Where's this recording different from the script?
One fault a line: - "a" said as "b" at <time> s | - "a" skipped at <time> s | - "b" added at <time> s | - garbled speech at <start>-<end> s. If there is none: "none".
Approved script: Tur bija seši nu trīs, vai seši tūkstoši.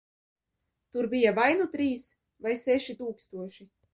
- "seši" said as "vai" at 1.4 s